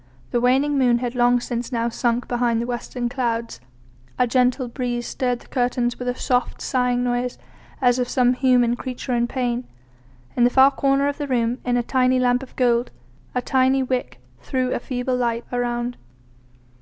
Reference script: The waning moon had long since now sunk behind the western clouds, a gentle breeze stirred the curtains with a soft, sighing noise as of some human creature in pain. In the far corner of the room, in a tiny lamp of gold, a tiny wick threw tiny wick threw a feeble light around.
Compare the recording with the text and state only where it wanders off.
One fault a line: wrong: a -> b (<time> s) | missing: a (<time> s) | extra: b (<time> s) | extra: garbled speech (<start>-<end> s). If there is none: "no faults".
missing: tiny wick threw (14.7 s)